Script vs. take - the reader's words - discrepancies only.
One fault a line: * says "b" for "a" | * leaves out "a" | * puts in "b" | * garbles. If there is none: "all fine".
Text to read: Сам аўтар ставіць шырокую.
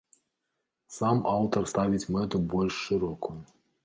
* puts in "мэту больш"